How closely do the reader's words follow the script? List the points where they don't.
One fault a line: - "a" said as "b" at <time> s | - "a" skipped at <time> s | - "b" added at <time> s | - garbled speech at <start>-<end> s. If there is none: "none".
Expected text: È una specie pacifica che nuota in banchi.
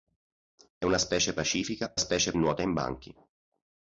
- "che" said as "specie" at 2.0 s